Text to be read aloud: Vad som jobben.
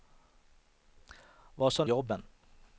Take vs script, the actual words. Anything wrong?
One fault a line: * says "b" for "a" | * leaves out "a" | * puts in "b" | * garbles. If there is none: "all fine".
all fine